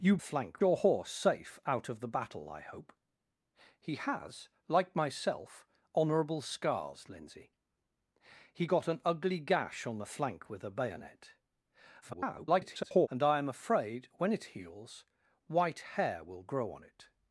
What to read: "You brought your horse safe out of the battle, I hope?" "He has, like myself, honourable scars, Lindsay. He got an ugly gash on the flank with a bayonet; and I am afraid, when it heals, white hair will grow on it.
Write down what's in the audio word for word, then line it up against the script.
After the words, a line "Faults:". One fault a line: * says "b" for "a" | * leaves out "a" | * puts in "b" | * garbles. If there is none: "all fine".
"You flank your horse safe out of the battle, I hope?" "He has, like myself, honourable scars, Lindsay. He got an ugly gash on the flank with a bayonet; [garbled] and I am afraid, when it heals, white hair will grow on it.
Faults:
* says "flank" for "brought"
* garbles